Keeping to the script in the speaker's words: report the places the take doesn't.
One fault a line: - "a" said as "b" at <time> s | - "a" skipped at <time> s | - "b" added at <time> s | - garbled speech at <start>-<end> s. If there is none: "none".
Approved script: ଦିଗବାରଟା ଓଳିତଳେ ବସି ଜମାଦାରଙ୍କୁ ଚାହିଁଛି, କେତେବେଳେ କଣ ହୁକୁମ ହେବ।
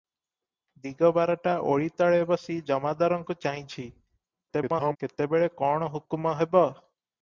- garbled speech at 4.5-5.0 s